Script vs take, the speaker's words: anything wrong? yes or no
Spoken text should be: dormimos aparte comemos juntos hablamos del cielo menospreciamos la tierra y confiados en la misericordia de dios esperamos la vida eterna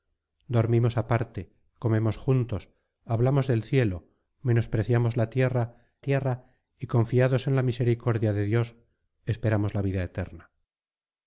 yes